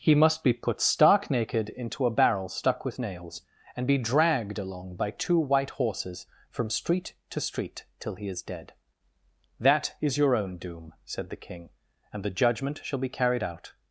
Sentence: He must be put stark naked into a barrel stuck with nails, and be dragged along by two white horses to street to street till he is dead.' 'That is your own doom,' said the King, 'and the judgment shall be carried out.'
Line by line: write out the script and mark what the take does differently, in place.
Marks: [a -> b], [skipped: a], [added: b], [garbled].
He must be put stark naked into a barrel stuck with nails, and be dragged along by two white horses [to -> from] street to street till he is dead.' 'That is your own doom,' said the King, 'and the judgment shall be carried out.'